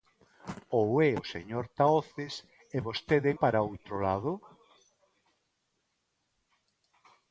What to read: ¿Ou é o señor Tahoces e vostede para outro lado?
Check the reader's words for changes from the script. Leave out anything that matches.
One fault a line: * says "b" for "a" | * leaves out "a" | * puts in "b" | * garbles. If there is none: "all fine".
all fine